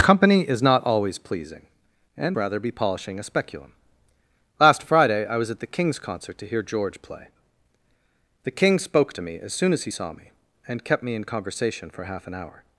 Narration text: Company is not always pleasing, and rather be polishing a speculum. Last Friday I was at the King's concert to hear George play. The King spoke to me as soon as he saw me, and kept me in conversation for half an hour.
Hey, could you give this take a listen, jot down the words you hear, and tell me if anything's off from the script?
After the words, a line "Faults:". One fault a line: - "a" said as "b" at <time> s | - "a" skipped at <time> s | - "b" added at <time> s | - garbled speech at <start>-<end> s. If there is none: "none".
Company is not always pleasing, and rather be polishing a speculum. Last Friday I was at the King's concert to hear George play. The King spoke to me as soon as he saw me, and kept me in conversation for half an hour.
Faults:
none